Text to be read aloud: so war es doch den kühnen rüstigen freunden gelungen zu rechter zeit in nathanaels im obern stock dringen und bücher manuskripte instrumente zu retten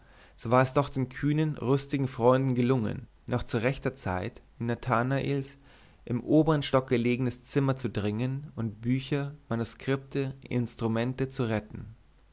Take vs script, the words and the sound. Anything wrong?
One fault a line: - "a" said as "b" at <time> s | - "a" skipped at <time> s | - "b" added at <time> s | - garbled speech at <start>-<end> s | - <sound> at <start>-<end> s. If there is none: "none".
- "noch" added at 3.3 s
- "gelegenes zimmer zu" added at 6.9 s